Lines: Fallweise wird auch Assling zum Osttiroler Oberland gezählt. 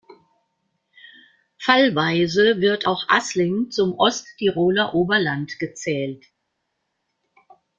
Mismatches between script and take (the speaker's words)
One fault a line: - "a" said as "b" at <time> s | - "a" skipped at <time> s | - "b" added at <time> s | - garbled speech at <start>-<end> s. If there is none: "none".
none